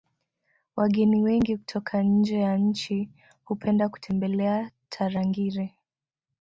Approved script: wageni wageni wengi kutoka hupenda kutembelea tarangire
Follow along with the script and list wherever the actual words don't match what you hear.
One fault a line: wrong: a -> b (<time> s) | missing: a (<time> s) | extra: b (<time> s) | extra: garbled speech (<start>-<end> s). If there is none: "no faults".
missing: wageni (1.2 s)
extra: nje ya nchi (2.0 s)